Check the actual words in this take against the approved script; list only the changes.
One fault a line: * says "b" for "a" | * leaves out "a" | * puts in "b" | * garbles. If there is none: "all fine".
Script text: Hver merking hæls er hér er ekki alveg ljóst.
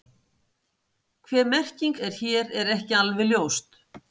* leaves out "hæls"